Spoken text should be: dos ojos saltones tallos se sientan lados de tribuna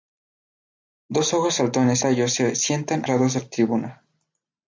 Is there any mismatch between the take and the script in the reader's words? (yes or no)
no